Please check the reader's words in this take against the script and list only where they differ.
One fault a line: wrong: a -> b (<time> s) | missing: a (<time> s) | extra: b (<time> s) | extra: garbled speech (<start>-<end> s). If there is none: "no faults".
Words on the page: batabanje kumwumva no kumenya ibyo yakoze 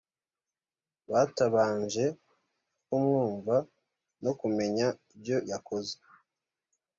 no faults